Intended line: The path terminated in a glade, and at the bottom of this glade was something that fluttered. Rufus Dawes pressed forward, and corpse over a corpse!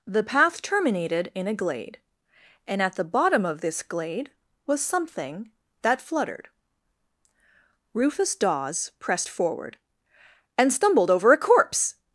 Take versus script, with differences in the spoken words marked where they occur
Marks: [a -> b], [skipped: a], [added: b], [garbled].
The path terminated in a glade, and at the bottom of this glade was something that fluttered. Rufus Dawes pressed forward, and [corpse -> stumbled] over a corpse!